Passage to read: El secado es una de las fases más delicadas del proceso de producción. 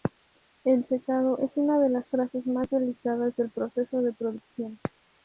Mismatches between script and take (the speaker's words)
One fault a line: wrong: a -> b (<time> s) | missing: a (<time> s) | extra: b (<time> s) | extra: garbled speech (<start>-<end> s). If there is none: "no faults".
no faults